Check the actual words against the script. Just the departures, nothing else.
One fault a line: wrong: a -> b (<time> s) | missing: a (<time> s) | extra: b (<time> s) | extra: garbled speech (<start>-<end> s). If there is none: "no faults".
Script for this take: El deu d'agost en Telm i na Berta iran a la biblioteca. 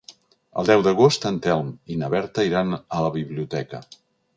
no faults